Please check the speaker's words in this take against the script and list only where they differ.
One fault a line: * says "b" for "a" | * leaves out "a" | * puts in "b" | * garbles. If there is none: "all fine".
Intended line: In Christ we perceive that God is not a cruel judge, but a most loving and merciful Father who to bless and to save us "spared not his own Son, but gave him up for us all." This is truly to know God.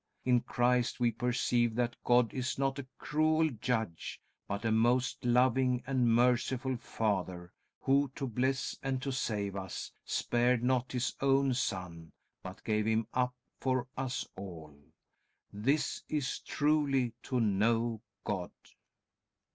all fine